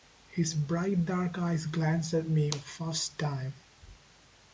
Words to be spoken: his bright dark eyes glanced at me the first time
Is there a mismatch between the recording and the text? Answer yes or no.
no